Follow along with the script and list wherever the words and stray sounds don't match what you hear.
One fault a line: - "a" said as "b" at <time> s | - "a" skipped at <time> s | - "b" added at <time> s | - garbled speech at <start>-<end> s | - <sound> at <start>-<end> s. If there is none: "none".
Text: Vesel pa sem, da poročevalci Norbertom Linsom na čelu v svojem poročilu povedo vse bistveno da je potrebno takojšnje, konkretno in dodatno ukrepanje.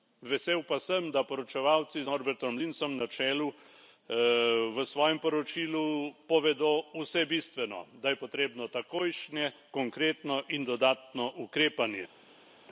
none